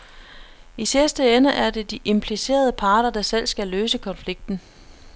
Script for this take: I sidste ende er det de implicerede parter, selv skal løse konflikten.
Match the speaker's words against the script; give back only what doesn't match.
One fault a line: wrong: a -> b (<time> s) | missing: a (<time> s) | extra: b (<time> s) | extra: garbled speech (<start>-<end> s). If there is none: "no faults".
extra: der (3.1 s)